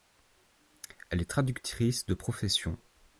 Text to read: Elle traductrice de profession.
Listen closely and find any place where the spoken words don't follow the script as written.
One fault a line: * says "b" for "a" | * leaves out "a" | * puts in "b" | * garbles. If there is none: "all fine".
* puts in "est"